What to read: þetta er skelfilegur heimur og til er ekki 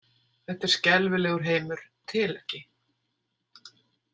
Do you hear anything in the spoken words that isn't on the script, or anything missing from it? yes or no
no